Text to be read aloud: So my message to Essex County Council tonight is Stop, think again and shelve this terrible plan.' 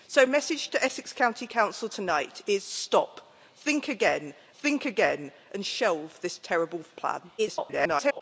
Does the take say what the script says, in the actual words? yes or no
no